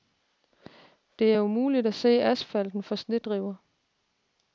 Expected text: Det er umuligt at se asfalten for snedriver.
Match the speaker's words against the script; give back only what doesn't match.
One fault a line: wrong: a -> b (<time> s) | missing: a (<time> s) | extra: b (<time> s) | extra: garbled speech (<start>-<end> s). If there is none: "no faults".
no faults